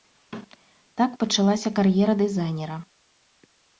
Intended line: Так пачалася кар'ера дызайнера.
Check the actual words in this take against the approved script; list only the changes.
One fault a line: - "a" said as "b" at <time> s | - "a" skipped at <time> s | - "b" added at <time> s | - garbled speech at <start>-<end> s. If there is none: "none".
none